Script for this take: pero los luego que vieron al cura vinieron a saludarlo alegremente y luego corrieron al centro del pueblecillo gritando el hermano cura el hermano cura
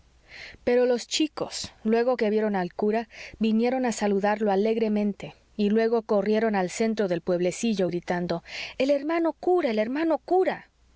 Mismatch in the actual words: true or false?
true